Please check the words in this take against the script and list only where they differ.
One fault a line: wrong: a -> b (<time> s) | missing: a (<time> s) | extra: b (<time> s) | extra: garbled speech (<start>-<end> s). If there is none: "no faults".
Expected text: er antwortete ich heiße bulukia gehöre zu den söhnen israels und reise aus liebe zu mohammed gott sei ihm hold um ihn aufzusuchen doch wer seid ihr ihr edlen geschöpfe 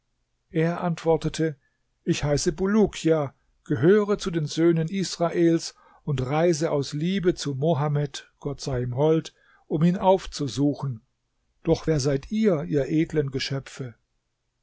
no faults